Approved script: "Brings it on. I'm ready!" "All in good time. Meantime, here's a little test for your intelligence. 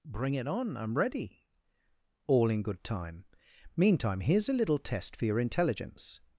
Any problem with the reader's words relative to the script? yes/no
yes